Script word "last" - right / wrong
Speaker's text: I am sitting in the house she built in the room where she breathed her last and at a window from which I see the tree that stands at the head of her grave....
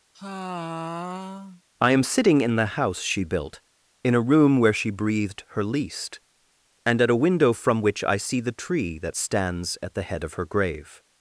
wrong